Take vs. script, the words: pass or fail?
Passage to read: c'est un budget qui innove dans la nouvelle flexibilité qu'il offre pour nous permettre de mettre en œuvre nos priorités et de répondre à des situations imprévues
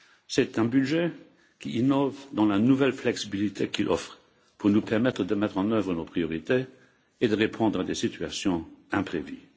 pass